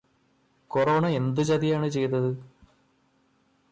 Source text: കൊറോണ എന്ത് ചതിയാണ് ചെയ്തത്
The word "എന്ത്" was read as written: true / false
true